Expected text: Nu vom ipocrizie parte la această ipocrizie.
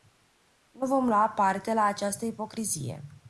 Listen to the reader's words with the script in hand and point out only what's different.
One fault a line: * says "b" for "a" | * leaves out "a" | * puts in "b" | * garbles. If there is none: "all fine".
* says "lua" for "ipocrizie"